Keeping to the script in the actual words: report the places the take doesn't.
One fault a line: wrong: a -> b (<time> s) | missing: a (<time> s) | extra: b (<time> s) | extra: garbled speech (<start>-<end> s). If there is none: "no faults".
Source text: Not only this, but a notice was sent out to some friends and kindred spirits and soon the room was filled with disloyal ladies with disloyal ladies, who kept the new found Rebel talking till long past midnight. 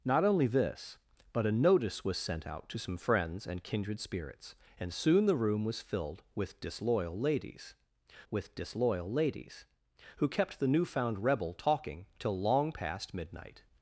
no faults